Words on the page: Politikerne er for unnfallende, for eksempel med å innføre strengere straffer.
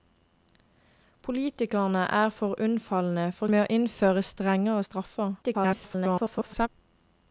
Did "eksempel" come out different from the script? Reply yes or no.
yes